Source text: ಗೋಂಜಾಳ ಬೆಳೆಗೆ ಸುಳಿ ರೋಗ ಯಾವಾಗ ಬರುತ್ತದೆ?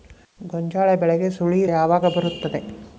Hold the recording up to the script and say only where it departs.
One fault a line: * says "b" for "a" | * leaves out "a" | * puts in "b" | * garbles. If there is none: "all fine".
* leaves out "ರೋಗ"